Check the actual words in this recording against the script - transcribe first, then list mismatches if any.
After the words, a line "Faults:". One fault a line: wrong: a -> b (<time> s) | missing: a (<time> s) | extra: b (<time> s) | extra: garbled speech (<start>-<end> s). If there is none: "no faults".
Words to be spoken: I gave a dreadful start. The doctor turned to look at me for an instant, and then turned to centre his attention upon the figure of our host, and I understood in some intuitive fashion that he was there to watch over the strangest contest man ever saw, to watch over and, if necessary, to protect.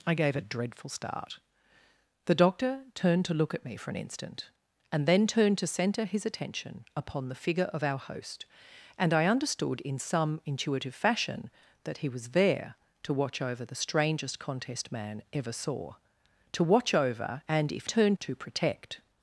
I gave a dreadful start. The doctor turned to look at me for an instant, and then turned to centre his attention upon the figure of our host, and I understood in some intuitive fashion that he was there to watch over the strangest contest man ever saw, to watch over and, if turned, to protect.
Faults:
wrong: necessary -> turned (17.9 s)